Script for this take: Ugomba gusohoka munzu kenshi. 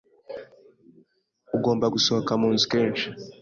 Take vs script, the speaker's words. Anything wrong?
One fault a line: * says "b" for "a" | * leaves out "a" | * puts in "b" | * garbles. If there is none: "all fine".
all fine